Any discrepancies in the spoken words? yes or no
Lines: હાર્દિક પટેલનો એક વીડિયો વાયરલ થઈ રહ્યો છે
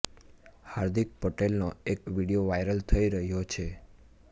no